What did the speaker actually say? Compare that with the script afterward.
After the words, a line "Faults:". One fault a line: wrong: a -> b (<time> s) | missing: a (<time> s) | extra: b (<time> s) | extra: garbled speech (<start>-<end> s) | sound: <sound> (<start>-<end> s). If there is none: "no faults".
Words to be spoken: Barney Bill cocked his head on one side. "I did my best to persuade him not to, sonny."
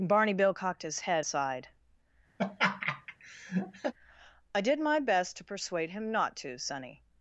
Barney Bill cocked his head side. "I did my best to persuade him not to, sonny."
Faults:
missing: on one (1.3 s)
sound: laugh (2.4-3.9 s)